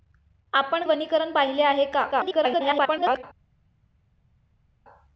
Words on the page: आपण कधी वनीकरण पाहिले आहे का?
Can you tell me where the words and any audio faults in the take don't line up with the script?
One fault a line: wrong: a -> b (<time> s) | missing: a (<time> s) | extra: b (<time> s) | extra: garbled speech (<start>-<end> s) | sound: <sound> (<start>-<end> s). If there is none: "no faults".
missing: कधी (0.9 s)
extra: garbled speech (2.1-3.2 s)